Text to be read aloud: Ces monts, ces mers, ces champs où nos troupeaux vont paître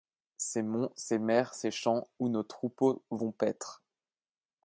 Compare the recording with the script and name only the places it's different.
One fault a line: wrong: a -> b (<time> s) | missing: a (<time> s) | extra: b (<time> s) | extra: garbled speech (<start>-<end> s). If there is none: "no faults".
no faults